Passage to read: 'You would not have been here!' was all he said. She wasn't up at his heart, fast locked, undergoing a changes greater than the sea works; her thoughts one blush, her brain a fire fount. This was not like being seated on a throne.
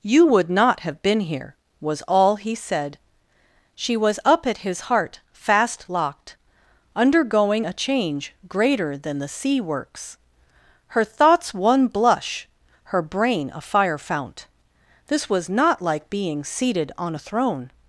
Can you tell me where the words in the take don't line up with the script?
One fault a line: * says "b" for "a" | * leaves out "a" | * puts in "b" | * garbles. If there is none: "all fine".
* says "was" for "wasn't"
* says "change" for "changes"